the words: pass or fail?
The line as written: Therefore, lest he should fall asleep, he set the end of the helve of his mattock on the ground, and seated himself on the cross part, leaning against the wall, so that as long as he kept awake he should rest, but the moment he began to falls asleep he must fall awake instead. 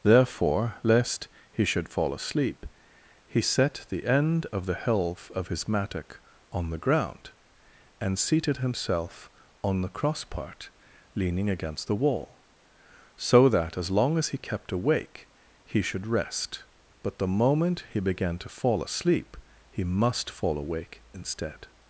fail